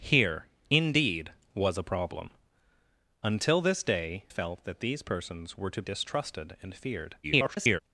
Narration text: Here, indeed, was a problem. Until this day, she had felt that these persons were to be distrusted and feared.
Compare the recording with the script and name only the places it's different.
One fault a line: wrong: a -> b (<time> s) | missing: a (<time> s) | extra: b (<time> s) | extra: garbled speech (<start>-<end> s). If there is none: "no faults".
missing: she had (4.2 s)
missing: be (5.8 s)
extra: garbled speech (7.2-7.8 s)